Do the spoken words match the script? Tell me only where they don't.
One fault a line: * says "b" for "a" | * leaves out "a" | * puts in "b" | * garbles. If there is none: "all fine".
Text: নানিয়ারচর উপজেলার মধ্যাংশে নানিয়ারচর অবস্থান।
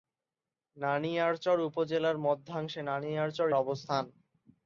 all fine